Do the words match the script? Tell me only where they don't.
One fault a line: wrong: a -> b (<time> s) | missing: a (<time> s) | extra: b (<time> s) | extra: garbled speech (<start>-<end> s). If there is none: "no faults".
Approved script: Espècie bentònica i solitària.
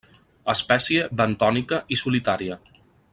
no faults